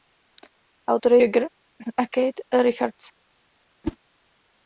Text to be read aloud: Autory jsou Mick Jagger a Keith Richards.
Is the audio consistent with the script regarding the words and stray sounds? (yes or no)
no